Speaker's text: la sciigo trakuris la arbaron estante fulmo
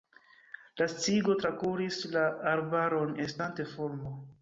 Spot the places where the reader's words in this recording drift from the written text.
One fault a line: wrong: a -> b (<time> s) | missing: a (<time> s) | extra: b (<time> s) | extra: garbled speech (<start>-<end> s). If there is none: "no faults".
no faults